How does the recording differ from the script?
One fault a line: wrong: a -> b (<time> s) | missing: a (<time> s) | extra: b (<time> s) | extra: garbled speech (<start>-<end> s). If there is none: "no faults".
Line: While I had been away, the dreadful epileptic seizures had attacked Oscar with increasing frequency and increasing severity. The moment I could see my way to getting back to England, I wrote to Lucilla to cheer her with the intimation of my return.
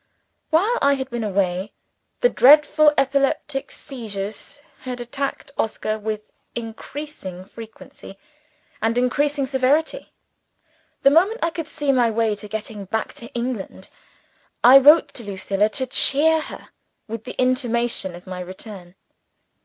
no faults